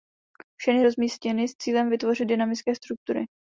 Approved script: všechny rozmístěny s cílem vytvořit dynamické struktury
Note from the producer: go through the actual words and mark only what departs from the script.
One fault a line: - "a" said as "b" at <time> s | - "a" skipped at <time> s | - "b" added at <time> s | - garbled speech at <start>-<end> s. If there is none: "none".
none